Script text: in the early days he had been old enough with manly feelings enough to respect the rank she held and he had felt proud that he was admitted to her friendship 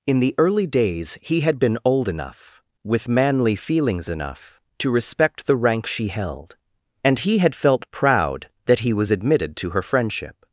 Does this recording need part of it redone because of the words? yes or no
no